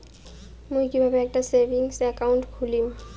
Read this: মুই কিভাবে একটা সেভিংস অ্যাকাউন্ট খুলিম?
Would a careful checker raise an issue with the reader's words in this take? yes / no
no